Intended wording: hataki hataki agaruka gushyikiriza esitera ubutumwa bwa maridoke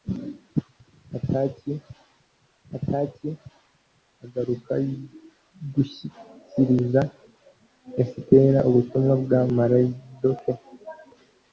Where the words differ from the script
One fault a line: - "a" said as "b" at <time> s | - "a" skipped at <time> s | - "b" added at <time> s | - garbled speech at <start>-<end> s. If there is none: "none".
none